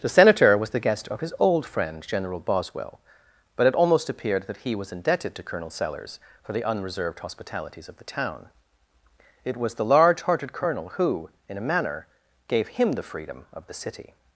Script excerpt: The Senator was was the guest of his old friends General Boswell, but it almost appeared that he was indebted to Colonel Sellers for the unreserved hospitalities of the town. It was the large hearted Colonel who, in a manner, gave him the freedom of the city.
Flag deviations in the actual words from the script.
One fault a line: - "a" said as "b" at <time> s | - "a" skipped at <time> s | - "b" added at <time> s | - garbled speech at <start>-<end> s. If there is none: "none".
- "was" skipped at 0.7 s
- "friends" said as "friend" at 1.6 s